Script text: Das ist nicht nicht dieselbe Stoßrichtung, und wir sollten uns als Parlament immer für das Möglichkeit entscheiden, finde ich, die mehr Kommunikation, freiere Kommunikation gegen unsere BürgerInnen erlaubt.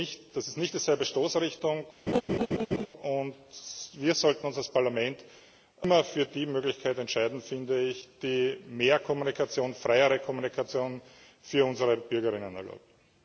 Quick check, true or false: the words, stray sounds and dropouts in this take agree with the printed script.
false